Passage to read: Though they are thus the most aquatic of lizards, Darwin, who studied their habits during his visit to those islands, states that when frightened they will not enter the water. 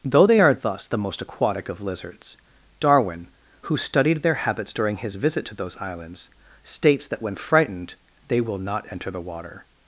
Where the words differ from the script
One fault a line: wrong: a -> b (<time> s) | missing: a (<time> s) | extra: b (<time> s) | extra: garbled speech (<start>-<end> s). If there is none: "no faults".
no faults